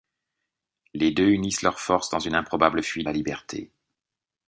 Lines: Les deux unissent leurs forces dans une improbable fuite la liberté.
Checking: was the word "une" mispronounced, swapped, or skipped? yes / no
no